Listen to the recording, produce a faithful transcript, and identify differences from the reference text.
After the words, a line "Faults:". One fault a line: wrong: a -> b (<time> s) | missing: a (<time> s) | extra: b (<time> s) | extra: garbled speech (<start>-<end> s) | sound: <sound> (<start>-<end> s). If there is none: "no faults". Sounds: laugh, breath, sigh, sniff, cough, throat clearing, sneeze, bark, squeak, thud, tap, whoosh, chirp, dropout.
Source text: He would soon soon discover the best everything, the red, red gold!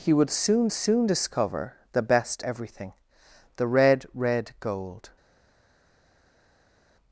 He would soon soon discover the best everything, the red, red gold!
Faults:
no faults